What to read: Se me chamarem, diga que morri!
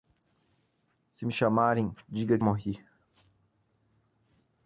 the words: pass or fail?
fail